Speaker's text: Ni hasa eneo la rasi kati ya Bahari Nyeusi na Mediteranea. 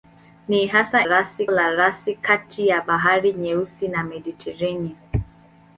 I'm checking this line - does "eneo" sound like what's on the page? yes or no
no